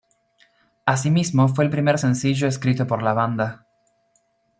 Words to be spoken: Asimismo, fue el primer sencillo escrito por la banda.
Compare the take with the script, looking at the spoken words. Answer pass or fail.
pass